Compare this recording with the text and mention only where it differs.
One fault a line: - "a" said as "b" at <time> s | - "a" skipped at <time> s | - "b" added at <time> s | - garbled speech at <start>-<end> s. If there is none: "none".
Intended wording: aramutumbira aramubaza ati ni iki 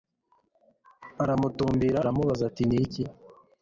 none